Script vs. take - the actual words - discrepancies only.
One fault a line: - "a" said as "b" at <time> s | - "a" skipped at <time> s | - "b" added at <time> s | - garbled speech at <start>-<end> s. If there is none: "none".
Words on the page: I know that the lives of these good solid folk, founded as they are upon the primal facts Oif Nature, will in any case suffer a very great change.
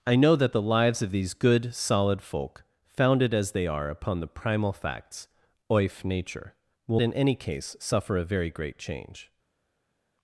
none